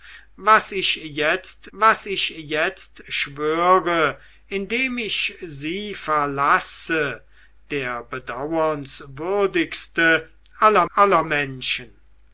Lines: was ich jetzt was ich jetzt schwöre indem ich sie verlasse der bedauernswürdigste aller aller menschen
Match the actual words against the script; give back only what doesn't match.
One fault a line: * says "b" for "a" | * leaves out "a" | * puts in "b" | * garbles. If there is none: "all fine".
all fine